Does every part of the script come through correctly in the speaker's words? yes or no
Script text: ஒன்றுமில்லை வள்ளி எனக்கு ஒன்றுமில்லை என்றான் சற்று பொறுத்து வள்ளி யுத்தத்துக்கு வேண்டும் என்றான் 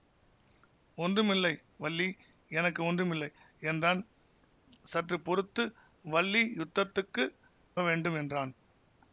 yes